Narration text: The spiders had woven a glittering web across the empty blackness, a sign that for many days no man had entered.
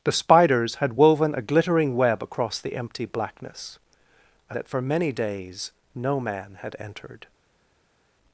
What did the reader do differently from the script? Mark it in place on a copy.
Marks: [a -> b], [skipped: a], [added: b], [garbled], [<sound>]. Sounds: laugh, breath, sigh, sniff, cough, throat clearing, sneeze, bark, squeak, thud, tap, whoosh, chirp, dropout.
The spiders had woven a glittering web across the empty blackness, a [skipped: sign] that for many days no man had entered.